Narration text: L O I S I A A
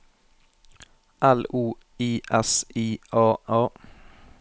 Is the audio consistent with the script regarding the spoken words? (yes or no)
yes